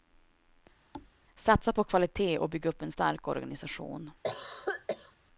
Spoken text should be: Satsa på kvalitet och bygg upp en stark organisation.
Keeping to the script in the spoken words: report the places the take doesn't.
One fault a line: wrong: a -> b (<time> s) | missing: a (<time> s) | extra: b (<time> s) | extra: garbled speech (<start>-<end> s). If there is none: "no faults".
no faults